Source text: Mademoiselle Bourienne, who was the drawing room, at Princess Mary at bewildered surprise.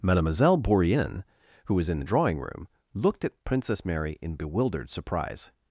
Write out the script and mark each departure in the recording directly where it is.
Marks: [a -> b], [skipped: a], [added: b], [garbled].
Mademoiselle Bourienne, who was [added: in] the drawing room, [added: looked] at Princess Mary [at -> in] bewildered surprise.